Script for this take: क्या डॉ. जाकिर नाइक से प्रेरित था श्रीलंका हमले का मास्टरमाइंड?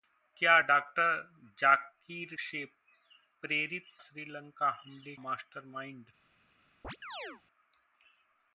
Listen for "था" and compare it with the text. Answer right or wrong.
wrong